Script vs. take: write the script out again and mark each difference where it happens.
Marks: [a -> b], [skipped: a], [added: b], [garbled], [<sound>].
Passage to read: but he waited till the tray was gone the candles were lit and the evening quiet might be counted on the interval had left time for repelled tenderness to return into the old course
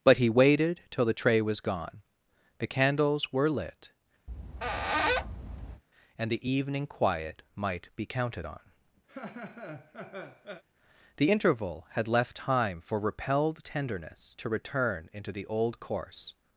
but he waited till the tray was gone the candles were lit [squeak] and the evening quiet might be counted on [laugh] the interval had left time for repelled tenderness to return into the old course